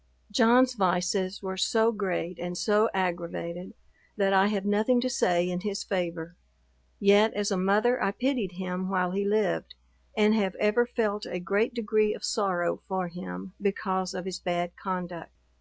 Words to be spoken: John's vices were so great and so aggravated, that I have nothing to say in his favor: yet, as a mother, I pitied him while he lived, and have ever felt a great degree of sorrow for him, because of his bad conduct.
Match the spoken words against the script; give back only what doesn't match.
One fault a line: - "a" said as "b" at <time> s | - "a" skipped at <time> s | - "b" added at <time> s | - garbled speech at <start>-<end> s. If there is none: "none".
none